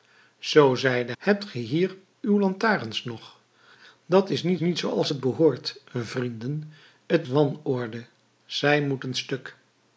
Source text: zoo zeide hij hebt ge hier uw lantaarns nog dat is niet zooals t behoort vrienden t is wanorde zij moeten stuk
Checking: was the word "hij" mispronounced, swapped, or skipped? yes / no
yes